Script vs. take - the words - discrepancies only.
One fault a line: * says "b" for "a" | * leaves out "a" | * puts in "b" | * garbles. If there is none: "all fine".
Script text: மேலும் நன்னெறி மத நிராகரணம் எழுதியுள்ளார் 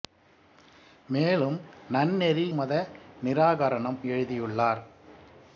all fine